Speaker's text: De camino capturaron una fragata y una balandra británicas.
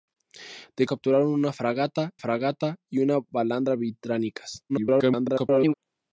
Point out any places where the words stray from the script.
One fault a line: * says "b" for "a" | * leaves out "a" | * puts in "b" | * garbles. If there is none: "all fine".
* leaves out "camino"
* puts in "fragata"
* garbles